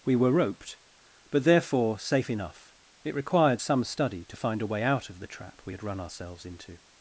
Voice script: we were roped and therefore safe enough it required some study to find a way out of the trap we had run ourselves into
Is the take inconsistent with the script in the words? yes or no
yes